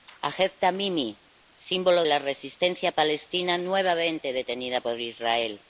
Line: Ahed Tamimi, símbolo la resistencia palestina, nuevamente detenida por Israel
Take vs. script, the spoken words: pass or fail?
pass